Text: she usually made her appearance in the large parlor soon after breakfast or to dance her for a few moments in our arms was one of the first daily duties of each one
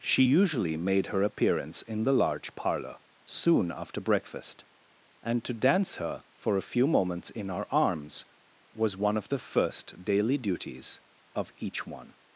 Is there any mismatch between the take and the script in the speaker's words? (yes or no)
yes